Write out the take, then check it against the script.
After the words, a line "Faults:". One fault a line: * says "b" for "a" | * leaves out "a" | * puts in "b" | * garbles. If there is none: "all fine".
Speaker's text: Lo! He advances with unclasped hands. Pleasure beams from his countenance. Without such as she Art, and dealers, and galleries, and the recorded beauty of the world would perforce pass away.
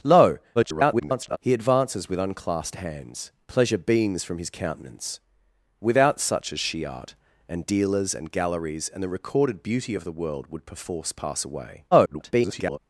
Lo! [garbled] He advances with unclasped hands. Pleasure beams from his countenance. Without such as she Art, and dealers, and galleries, and the recorded beauty of the world would perforce pass away. [garbled]
Faults:
* garbles
* garbles